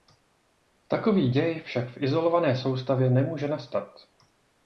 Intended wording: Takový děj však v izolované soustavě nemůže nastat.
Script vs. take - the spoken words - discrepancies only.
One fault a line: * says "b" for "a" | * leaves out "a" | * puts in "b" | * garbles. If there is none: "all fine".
all fine